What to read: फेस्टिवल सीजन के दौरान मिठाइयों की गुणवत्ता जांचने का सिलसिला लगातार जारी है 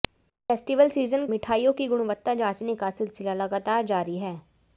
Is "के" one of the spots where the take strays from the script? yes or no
yes